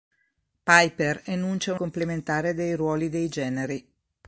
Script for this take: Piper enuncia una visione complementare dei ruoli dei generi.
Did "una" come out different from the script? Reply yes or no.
yes